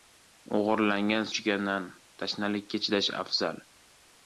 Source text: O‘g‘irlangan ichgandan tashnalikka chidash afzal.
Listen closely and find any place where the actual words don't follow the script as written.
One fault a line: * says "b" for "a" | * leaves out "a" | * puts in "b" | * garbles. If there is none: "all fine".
all fine